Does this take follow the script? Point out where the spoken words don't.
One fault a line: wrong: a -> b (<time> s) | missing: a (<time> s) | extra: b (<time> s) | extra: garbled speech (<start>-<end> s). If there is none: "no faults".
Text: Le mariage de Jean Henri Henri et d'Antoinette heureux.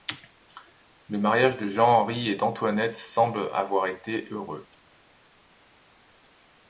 missing: Henri (2.3 s)
extra: semble avoir été (3.0 s)